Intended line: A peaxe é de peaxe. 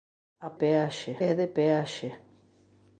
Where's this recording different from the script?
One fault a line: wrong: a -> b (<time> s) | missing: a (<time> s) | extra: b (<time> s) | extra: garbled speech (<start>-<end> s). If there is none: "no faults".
no faults